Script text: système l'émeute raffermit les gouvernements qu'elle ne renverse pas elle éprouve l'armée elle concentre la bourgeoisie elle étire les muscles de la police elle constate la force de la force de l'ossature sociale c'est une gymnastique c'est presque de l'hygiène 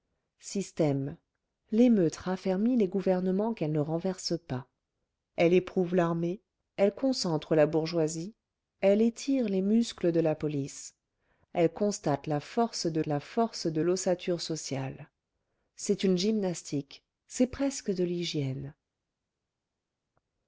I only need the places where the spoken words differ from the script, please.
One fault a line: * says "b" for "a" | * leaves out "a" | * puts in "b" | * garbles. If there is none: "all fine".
all fine